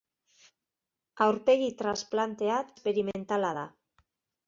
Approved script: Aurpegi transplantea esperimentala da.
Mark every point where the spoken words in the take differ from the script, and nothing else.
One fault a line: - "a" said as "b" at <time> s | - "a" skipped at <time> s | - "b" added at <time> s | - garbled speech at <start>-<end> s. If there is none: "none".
none